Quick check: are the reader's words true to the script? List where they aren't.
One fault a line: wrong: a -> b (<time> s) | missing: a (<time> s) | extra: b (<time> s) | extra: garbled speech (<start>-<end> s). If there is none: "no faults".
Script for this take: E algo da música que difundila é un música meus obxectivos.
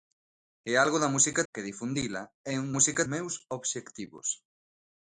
no faults